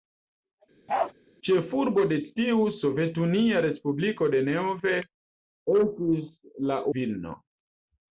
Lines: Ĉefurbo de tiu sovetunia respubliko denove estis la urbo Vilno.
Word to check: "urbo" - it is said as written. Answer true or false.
false